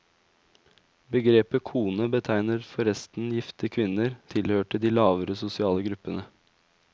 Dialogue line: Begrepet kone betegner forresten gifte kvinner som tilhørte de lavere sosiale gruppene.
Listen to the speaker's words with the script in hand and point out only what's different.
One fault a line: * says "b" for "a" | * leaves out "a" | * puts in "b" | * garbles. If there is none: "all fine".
* leaves out "som"